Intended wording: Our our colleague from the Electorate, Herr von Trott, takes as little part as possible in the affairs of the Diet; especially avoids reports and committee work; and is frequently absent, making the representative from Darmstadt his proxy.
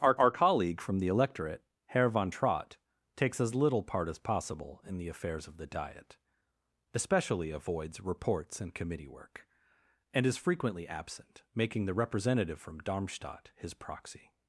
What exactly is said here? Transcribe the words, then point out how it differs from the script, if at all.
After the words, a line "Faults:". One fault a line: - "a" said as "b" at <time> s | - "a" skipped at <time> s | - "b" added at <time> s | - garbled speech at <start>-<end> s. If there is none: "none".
Our our colleague from the Electorate, Herr von Trott, takes as little part as possible in the affairs of the Diet; especially avoids reports and committee work; and is frequently absent, making the representative from Darmstadt his proxy.
Faults:
none